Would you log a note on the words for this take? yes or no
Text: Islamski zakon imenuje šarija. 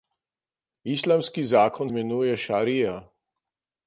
no